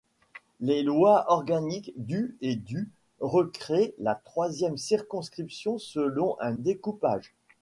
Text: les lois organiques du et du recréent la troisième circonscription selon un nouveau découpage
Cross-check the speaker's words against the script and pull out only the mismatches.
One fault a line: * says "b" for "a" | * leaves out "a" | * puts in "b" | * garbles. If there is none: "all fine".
* leaves out "nouveau"